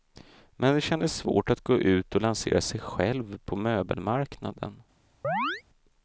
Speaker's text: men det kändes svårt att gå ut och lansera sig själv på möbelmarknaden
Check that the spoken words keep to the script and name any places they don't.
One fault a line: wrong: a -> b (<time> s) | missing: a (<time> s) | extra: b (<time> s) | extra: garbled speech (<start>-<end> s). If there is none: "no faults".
no faults